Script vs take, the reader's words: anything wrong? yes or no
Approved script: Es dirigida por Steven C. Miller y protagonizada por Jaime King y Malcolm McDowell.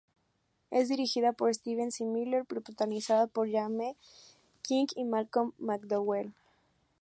no